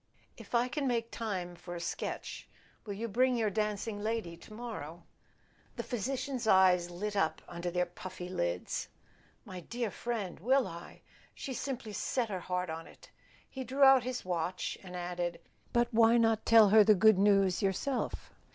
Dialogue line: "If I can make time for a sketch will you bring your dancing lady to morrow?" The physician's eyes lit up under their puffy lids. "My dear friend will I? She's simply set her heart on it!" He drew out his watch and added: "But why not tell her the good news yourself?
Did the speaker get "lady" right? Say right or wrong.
right